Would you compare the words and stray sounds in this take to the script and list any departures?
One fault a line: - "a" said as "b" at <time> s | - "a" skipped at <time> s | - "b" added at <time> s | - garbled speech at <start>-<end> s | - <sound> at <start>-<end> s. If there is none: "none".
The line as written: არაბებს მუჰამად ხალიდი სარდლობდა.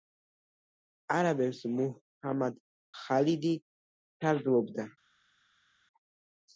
none